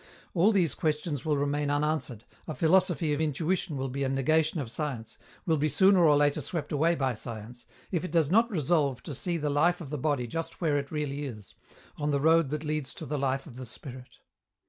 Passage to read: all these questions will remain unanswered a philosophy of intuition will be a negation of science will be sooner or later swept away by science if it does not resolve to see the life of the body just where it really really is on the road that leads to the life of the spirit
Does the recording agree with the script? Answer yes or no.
no